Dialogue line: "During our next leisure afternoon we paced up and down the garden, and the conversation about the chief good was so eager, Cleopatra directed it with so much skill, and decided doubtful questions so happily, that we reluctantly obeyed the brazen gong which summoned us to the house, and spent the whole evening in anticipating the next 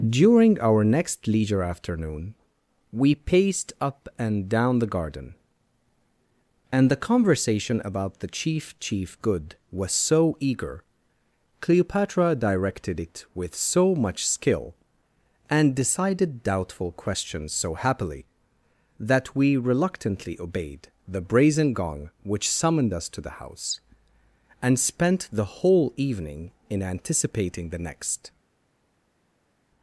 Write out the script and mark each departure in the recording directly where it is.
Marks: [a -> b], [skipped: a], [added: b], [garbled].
"During our next leisure afternoon we paced up and down the garden, and the conversation about the chief [added: chief] good was so eager, Cleopatra directed it with so much skill, and decided doubtful questions so happily, that we reluctantly obeyed the brazen gong which summoned us to the house, and spent the whole evening in anticipating the next